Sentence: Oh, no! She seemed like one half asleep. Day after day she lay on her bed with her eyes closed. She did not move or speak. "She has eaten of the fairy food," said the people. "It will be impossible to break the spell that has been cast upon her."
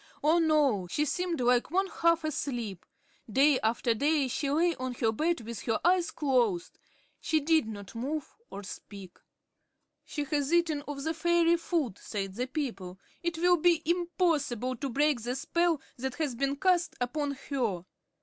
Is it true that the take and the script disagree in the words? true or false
false